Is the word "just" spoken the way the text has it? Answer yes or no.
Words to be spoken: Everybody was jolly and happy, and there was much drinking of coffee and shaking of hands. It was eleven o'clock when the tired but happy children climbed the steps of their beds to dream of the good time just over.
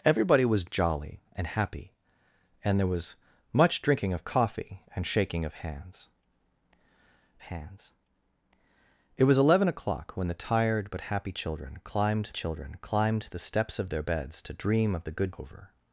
no